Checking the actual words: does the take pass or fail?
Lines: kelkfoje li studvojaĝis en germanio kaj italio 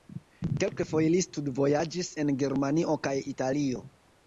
pass